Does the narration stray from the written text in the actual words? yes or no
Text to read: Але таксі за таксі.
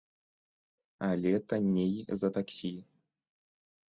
yes